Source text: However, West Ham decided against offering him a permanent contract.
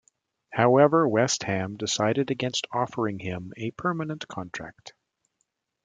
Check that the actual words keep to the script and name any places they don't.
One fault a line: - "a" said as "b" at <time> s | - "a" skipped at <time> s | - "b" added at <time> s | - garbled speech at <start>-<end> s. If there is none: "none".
none